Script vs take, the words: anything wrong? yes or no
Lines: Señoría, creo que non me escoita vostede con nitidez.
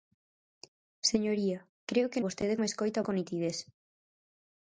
yes